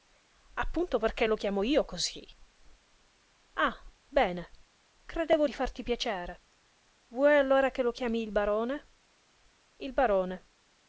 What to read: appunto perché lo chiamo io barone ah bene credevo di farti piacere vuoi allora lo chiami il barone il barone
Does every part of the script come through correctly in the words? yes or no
no